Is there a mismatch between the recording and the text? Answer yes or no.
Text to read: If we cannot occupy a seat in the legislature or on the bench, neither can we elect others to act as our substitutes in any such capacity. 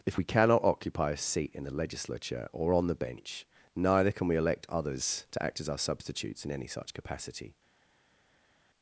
no